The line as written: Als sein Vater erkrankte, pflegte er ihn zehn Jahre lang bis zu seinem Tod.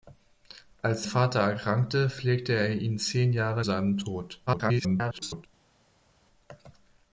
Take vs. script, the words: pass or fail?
fail